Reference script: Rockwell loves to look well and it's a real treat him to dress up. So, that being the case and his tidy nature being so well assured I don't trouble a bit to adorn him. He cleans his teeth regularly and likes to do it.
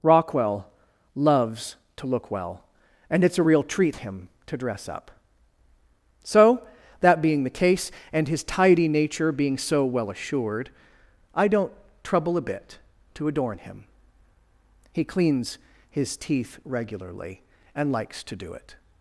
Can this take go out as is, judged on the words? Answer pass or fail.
pass